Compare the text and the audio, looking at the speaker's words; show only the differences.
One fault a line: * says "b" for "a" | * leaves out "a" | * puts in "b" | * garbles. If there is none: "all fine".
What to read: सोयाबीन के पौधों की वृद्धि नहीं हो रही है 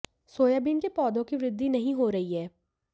all fine